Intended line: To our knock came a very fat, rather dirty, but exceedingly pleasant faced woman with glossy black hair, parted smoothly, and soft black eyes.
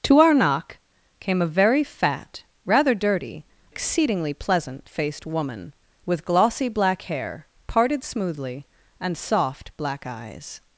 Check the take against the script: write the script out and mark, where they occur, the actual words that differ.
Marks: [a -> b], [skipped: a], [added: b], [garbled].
To our knock came a very fat, rather dirty, [skipped: but] exceedingly pleasant faced woman with glossy black hair, parted smoothly, and soft black eyes.